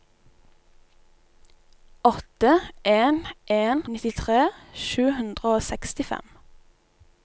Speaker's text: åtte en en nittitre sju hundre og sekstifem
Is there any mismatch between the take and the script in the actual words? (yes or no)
no